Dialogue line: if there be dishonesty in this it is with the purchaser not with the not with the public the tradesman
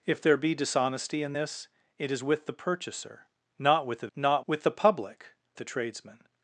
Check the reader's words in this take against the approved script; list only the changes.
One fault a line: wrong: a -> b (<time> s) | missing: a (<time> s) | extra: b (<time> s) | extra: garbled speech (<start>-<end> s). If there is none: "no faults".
no faults